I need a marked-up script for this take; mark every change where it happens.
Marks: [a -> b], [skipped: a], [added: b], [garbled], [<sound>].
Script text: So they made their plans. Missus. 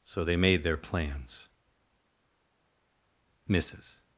So they made their plans. Missus.